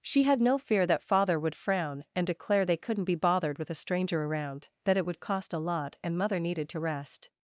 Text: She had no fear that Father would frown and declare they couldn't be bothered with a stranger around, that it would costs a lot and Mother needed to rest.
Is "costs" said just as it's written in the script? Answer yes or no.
no